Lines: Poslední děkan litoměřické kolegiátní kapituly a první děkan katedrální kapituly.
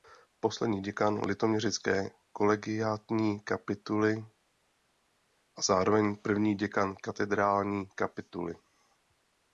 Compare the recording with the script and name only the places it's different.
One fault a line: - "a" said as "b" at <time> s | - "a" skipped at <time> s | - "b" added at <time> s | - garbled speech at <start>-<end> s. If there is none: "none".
- "zároveň" added at 5.6 s